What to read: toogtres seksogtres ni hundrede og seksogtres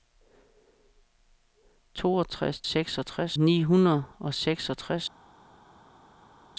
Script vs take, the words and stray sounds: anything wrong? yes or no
no